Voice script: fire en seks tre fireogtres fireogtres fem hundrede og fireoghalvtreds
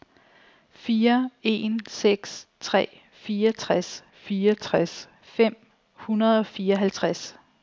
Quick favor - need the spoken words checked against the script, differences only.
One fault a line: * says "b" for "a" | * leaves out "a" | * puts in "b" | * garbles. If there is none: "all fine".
all fine